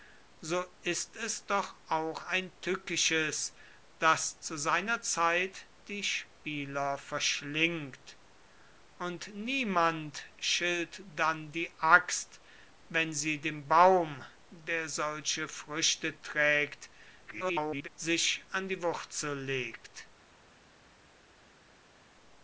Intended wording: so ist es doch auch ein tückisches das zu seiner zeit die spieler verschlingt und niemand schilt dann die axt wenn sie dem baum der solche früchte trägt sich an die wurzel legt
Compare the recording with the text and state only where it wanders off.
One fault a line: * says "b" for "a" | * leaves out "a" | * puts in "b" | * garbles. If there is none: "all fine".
* garbles